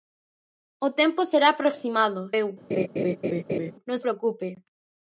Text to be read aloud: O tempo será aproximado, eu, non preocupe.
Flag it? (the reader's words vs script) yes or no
no